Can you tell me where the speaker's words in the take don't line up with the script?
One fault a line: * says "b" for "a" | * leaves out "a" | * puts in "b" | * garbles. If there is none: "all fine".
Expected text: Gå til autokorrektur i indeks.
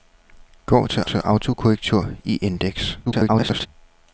* puts in "til"
* garbles